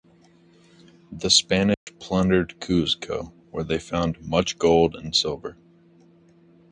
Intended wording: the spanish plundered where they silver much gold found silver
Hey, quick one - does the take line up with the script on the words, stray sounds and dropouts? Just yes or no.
no